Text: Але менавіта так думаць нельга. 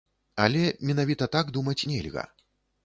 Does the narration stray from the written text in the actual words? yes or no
no